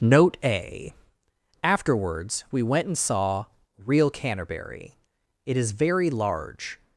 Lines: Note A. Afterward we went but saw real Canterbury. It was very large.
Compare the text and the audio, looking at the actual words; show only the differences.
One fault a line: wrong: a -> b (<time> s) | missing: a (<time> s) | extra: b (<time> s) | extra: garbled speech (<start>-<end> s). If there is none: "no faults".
wrong: Afterward -> Afterwards (1.6 s)
wrong: but -> and (2.9 s)
wrong: was -> is (5.6 s)